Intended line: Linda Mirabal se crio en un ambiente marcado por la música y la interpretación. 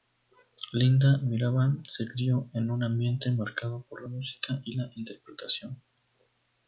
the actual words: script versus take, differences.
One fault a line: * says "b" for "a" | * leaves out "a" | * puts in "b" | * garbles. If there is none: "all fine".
all fine